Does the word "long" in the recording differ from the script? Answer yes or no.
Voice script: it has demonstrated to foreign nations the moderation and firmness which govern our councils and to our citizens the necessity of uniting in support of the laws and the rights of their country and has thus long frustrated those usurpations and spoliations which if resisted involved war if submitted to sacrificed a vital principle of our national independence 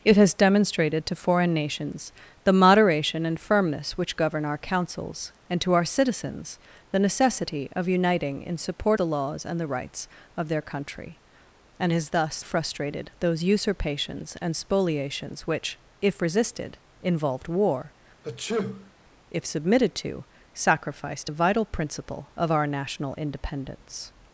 yes